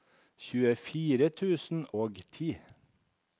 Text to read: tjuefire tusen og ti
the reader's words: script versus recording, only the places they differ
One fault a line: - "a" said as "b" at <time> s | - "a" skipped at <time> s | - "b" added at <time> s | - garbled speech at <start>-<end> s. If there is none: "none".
none